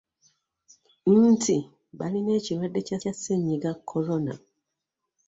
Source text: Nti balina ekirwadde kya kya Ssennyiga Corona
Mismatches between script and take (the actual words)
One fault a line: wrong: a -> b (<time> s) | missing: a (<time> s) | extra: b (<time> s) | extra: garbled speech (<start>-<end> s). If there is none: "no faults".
no faults